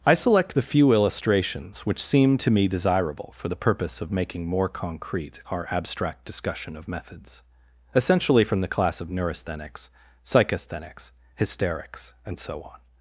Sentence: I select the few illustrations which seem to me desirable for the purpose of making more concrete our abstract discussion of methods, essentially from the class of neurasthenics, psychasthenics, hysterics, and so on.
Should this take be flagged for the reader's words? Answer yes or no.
no